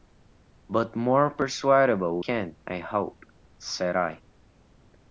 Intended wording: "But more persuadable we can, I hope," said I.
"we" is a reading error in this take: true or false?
true